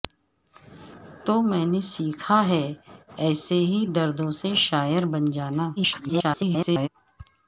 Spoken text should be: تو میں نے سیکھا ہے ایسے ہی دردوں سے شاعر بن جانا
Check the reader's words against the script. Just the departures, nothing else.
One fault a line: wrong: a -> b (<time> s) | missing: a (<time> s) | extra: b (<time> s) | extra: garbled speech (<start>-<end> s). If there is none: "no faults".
extra: garbled speech (5.8-6.9 s)